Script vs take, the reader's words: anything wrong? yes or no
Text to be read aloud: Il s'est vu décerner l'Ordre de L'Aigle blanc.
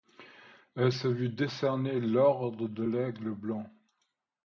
yes